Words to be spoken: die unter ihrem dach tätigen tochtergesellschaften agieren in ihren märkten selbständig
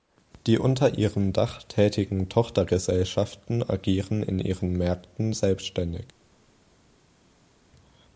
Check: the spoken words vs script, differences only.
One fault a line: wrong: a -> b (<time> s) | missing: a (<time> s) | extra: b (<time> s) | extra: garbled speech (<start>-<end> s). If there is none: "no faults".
no faults